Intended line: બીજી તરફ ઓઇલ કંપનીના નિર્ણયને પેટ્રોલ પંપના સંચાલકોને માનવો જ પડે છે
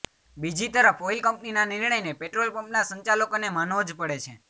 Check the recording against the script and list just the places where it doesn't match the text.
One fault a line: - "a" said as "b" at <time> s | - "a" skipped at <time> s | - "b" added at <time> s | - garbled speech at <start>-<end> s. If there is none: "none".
none